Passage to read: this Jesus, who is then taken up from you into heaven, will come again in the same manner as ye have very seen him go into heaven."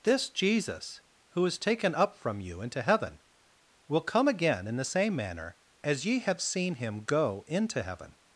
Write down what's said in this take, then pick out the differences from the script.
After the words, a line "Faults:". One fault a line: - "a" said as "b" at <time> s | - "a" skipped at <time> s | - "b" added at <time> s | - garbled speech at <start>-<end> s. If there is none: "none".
this Jesus, who is taken up from you into heaven, will come again in the same manner as ye have seen him go into heaven."
Faults:
- "then" skipped at 1.6 s
- "very" skipped at 6.4 s